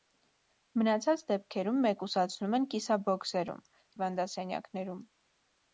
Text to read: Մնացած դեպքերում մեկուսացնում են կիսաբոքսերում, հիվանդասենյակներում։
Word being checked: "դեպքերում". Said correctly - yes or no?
yes